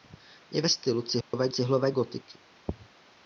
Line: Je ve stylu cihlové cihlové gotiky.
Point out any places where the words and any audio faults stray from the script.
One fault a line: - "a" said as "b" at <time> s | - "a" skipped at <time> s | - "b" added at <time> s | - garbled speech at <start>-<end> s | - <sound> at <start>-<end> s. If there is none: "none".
- dropout at 1.2-1.3 s